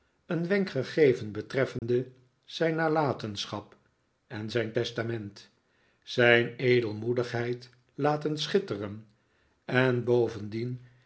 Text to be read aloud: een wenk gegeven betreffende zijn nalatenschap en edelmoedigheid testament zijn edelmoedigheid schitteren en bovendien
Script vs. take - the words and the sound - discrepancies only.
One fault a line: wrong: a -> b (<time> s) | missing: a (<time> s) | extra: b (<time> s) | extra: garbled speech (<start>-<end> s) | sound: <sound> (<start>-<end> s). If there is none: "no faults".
sound: dropout (1.8-1.8 s)
wrong: edelmoedigheid -> zijn (4.5 s)
extra: laten (7.9 s)